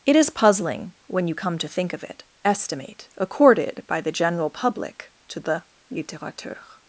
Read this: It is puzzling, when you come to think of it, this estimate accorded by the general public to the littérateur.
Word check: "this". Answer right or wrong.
wrong